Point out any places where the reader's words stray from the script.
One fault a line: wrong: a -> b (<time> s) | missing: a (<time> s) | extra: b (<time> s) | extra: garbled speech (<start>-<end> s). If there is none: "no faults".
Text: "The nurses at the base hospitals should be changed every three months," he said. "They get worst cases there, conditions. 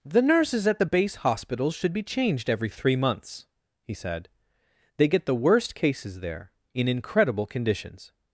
extra: the (5.2 s)
extra: in incredible (6.7 s)